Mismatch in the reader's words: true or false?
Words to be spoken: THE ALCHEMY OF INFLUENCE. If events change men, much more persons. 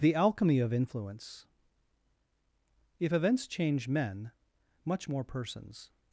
false